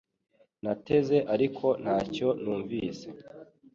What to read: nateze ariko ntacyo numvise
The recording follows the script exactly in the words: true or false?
true